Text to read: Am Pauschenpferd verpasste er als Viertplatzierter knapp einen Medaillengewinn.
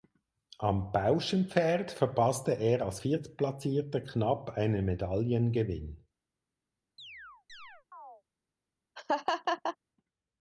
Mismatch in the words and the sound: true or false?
true